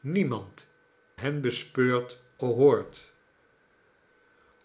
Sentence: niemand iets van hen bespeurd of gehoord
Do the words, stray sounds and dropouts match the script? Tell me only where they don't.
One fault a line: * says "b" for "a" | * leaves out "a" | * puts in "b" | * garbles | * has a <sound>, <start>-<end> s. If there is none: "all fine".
* leaves out "iets van"
* leaves out "of"